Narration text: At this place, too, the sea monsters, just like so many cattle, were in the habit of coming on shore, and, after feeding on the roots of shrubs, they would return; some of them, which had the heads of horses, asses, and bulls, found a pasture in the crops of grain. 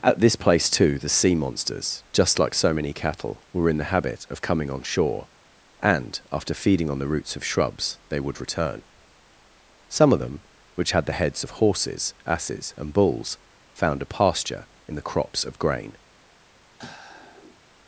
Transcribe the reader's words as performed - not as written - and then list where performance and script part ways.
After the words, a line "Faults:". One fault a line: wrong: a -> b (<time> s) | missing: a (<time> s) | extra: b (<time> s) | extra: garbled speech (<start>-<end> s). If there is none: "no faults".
At this place, too, the sea monsters, just like so many cattle, were in the habit of coming on shore, and, after feeding on the roots of shrubs, they would return; some of them, which had the heads of horses, asses, and bulls, found a pasture in the crops of grain.
Faults:
no faults